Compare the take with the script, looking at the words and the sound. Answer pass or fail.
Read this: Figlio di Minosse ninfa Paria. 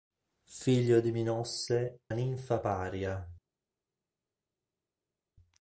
pass